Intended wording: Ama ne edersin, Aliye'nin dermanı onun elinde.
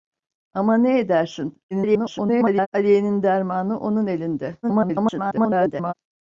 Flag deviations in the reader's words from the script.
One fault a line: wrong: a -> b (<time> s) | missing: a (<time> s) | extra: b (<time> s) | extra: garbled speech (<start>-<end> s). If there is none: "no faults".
extra: garbled speech (1.7-2.7 s)
extra: garbled speech (4.6-5.9 s)